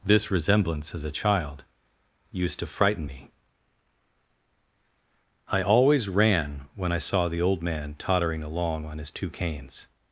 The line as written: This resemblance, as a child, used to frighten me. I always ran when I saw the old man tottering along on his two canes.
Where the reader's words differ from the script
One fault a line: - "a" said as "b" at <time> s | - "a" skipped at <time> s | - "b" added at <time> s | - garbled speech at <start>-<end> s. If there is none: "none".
none